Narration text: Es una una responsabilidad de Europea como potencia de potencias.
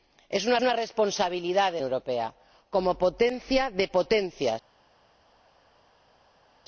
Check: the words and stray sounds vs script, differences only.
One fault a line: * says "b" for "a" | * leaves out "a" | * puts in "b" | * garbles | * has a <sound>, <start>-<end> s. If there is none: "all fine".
all fine